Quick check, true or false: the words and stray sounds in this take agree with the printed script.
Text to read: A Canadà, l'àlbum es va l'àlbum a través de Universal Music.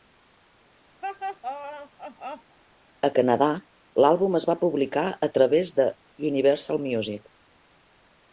false